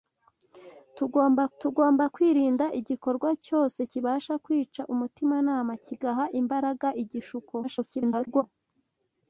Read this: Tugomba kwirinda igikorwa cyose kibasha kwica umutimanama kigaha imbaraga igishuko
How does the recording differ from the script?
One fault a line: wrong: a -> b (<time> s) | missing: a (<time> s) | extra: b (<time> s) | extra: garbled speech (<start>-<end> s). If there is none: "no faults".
extra: tugomba (1.6 s)
extra: garbled speech (7.6-8.4 s)